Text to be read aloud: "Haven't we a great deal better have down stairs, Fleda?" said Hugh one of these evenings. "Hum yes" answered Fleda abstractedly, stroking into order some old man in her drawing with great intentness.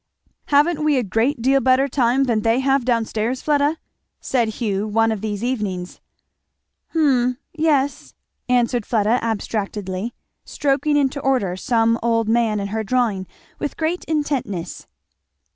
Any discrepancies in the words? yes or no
yes